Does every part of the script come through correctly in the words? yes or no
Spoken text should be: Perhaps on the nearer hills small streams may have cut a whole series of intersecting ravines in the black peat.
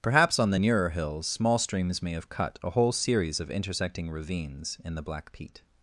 yes